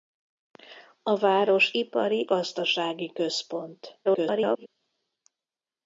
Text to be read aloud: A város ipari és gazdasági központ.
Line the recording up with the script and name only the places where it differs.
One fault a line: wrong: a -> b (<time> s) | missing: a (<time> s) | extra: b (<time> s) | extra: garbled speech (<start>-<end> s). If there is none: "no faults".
missing: és (2.3 s)
extra: garbled speech (4.0-4.7 s)